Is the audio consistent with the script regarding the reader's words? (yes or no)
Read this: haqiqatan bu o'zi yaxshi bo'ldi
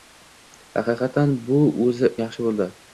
yes